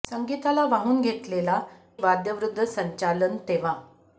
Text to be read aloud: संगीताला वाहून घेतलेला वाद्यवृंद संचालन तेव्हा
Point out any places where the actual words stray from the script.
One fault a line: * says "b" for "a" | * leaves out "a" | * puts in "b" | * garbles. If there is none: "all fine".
all fine